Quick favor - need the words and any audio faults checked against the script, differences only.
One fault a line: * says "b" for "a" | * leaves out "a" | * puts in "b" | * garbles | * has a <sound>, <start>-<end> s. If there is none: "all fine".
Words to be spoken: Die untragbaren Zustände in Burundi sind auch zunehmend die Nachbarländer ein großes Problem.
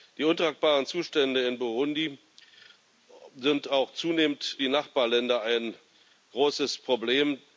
all fine